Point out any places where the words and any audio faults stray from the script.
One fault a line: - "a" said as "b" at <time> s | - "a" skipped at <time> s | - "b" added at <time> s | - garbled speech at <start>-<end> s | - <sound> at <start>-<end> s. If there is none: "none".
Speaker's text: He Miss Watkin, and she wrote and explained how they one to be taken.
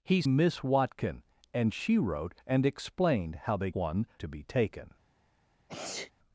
- sneeze at 5.7-6.1 s